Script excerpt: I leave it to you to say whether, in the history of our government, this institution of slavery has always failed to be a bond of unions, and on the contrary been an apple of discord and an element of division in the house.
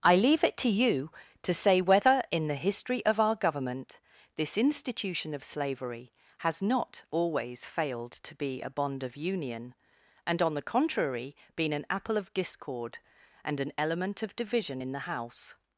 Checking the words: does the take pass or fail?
fail